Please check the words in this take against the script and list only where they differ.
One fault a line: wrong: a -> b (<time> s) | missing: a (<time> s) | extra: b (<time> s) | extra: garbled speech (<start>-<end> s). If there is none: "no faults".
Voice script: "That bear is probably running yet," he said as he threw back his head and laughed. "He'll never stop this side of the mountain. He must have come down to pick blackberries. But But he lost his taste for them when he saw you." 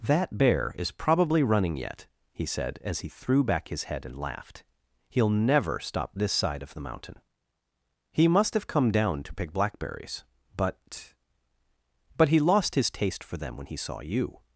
no faults